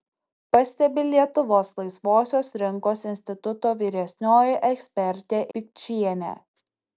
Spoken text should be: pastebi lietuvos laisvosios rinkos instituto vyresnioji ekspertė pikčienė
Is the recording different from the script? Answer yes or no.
no